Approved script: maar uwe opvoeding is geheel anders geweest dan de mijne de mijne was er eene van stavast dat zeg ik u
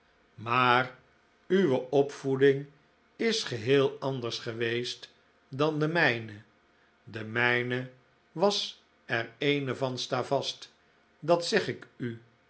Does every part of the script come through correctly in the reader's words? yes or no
yes